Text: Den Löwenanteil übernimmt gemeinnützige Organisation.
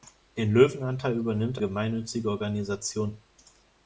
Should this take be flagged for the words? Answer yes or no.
no